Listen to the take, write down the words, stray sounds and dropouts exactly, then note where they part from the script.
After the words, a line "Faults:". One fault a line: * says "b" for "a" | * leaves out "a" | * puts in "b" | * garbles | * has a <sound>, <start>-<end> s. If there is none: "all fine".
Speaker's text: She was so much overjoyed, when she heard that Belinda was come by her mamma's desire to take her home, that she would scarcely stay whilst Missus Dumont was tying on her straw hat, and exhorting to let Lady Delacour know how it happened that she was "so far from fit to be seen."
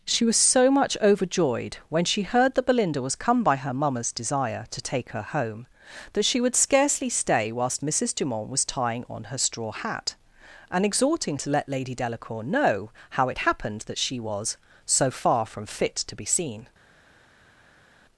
She was so much overjoyed, when she heard that Belinda was come by her mamma's desire to take her home, that she would scarcely stay whilst Missus Dumont was tying on her straw hat, and exhorting to let Lady Delacour know how it happened that she was "so far from fit to be seen."
Faults:
all fine